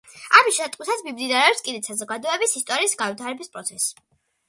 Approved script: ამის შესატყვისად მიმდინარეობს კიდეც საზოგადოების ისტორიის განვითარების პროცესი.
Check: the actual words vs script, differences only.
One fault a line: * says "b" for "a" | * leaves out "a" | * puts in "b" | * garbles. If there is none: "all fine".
all fine